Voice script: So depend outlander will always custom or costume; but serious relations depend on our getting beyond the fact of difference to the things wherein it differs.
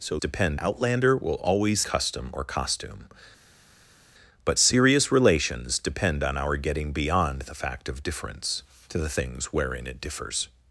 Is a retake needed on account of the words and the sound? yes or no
no